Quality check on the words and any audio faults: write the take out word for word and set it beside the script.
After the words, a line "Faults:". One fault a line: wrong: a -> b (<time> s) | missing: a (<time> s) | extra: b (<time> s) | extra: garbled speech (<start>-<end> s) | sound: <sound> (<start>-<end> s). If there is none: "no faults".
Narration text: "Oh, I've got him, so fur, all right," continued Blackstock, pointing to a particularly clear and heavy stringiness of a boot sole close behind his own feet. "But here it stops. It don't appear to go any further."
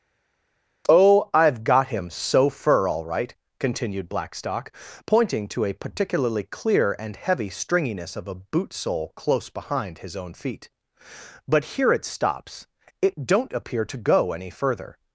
"Oh, I've got him, so fur, all right," continued Blackstock, pointing to a particularly clear and heavy stringiness of a boot sole close behind his own feet. "But here it stops. It don't appear to go any further."
Faults:
no faults